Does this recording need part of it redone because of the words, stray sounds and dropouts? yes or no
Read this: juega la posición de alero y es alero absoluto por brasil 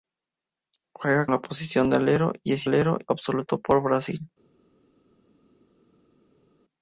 no